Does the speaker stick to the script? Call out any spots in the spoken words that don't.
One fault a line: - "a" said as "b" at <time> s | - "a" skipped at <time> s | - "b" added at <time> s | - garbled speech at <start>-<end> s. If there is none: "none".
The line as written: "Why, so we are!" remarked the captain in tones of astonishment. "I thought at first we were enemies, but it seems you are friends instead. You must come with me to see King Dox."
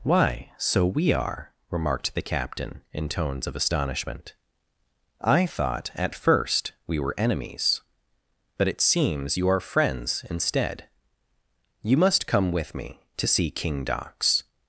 none